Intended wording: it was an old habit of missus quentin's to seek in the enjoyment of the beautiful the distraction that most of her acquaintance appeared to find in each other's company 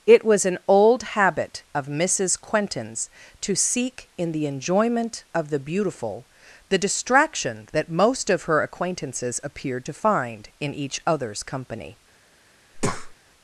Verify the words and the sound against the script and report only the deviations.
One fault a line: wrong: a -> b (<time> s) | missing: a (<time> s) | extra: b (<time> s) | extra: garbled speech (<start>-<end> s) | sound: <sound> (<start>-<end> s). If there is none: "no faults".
wrong: acquaintance -> acquaintances (8.6 s)
sound: breath (12.7-13.2 s)